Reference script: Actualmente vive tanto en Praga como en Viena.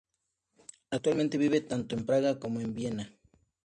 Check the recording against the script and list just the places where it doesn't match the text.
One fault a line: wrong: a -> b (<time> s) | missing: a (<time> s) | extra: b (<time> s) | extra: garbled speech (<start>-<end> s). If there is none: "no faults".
no faults